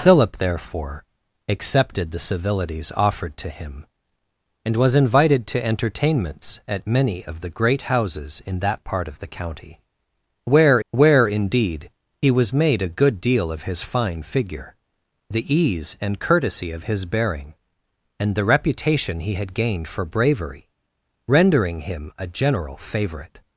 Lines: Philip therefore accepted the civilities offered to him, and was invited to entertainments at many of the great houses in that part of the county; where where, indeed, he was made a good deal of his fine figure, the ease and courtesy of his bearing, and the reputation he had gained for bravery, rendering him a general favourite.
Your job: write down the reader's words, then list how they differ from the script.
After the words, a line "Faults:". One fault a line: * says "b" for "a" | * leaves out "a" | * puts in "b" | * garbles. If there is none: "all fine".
Philip therefore accepted the civilities offered to him, and was invited to entertainments at many of the great houses in that part of the county; where where, indeed, he was made a good deal of his fine figure, the ease and courtesy of his bearing, and the reputation he had gained for bravery, rendering him a general favourite.
Faults:
all fine